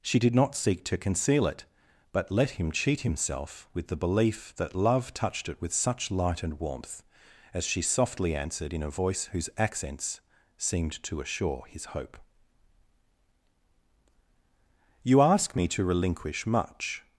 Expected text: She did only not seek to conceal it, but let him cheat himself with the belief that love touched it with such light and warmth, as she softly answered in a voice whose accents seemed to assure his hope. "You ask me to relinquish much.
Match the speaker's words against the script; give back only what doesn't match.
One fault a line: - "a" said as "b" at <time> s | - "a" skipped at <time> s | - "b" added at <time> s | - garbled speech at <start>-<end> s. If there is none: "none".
- "only" skipped at 0.3 s